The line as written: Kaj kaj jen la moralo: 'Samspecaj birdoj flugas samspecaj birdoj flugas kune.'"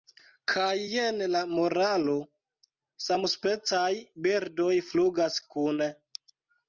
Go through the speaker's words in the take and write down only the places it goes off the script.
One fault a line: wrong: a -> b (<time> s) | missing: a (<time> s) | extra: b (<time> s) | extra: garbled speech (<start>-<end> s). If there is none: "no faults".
missing: kaj (0.7 s)
missing: samspecaj birdoj flugas (5.4 s)